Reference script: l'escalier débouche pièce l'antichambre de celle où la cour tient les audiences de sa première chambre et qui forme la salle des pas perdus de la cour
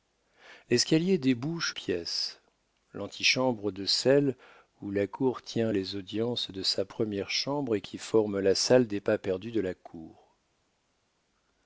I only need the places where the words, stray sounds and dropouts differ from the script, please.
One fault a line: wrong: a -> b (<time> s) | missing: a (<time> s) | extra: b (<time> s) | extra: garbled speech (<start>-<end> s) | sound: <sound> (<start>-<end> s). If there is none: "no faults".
no faults